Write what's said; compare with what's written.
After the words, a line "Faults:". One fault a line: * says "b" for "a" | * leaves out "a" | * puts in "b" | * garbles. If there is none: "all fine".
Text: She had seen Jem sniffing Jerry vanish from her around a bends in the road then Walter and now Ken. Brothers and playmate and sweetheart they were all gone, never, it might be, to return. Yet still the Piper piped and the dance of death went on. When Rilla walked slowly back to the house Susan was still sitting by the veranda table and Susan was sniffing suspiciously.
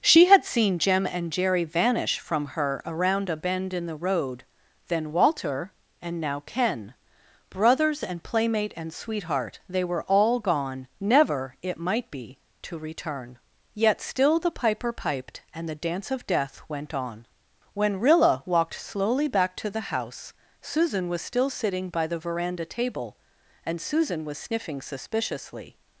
She had seen Jem and Jerry vanish from her around a bend in the road then Walter and now Ken. Brothers and playmate and sweetheart they were all gone, never, it might be, to return. Yet still the Piper piped and the dance of death went on. When Rilla walked slowly back to the house Susan was still sitting by the veranda table and Susan was sniffing suspiciously.
Faults:
* says "and" for "sniffing"
* says "bend" for "bends"